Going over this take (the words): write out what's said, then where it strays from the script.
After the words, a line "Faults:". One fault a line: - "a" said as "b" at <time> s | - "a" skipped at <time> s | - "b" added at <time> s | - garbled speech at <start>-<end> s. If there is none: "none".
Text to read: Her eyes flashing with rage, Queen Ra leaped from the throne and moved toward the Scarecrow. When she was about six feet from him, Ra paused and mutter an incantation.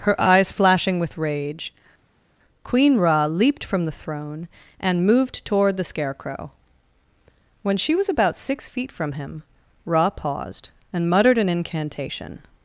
Her eyes flashing with rage, Queen Ra leaped from the throne and moved toward the Scarecrow. When she was about six feet from him, Ra paused and muttered an incantation.
Faults:
- "mutter" said as "muttered" at 11.1 s